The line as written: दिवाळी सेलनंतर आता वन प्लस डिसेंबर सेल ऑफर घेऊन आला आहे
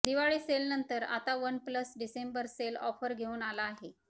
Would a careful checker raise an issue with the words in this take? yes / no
no